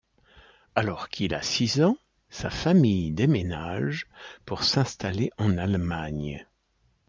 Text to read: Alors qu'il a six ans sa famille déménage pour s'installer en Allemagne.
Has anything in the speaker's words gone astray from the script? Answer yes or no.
no